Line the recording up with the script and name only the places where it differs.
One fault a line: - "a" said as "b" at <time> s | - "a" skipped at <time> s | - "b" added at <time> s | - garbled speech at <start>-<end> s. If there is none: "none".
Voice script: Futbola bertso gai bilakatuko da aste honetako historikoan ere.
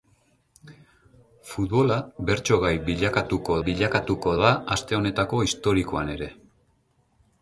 - "bilakatuko" added at 3.7 s